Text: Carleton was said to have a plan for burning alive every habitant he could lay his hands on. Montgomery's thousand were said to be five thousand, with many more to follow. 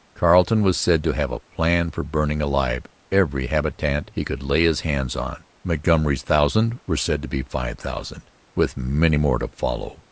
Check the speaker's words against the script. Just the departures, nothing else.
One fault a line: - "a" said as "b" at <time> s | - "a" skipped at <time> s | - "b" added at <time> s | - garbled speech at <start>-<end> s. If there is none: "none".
none